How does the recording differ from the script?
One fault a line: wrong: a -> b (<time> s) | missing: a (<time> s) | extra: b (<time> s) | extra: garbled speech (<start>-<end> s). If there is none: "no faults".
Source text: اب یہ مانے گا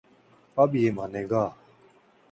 no faults